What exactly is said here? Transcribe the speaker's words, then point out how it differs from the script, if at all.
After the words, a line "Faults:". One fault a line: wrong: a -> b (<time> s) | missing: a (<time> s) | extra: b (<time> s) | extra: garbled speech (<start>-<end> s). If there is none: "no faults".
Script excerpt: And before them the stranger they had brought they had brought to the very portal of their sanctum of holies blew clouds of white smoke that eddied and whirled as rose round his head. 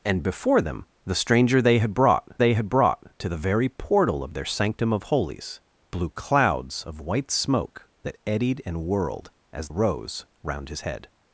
And before them the stranger they had brought they had brought to the very portal of their sanctum of holies blew clouds of white smoke that eddied and whirled as rose round his head.
Faults:
no faults